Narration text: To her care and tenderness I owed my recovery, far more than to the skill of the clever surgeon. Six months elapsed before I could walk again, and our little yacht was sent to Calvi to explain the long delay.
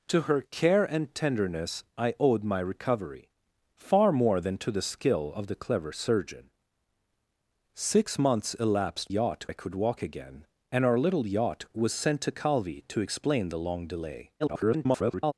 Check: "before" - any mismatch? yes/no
yes